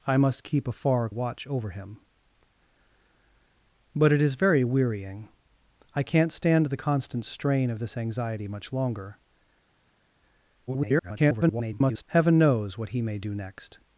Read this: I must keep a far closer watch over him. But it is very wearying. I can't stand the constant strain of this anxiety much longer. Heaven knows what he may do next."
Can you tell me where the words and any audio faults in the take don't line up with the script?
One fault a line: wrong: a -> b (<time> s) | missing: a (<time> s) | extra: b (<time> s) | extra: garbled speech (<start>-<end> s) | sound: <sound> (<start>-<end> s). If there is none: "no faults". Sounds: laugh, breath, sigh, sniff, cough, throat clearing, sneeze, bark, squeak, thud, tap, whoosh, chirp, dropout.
missing: closer (1.1 s)
extra: garbled speech (10.7-12.0 s)